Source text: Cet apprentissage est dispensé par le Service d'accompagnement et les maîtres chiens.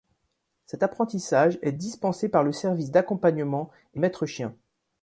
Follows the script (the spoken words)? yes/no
no